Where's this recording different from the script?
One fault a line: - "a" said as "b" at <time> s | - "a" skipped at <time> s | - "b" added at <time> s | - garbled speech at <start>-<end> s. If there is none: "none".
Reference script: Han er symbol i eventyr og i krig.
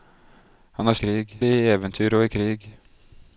- "symbol" said as "krig" at 1.0 s